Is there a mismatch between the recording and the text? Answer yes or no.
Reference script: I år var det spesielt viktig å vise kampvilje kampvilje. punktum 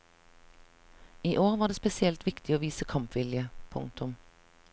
yes